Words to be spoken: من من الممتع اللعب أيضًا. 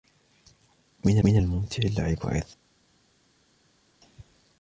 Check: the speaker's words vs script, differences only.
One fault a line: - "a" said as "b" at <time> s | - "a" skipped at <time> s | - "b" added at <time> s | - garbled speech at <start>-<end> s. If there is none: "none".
none